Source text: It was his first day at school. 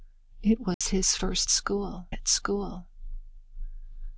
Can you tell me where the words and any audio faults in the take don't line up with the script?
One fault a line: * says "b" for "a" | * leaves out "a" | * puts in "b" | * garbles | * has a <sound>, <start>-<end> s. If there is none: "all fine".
* has a dropout, 0.7-0.8 s
* says "school" for "day"